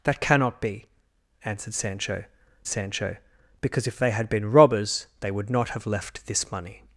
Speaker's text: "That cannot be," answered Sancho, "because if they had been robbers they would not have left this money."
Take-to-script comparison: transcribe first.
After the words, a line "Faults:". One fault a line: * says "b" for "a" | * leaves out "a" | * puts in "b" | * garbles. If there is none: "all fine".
"That cannot be," answered Sancho Sancho, "because if they had been robbers they would not have left this money."
Faults:
* puts in "Sancho"